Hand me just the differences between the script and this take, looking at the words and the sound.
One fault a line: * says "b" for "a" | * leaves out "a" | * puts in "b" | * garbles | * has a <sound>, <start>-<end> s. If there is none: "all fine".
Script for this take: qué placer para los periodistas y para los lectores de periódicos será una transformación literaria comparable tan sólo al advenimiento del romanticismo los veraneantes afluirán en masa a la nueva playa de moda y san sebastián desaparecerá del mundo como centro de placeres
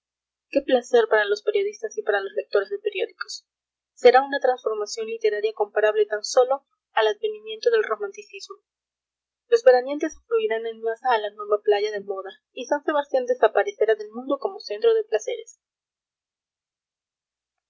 all fine